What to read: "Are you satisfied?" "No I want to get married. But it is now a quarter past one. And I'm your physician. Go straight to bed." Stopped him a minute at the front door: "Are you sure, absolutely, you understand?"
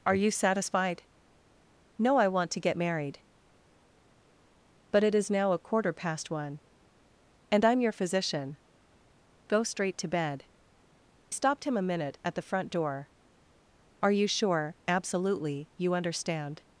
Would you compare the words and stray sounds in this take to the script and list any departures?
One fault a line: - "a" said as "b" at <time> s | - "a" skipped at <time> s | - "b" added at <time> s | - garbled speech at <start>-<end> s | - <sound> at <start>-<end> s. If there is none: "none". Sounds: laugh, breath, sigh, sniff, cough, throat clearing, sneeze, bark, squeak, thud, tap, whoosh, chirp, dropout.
none